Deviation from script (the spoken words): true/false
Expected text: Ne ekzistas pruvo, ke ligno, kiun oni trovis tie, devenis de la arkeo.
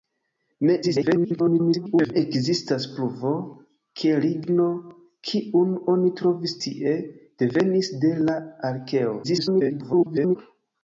true